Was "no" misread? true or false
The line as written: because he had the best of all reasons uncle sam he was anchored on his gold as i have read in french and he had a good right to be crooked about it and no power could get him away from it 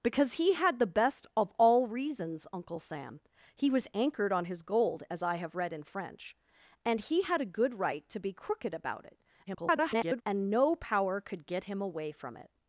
false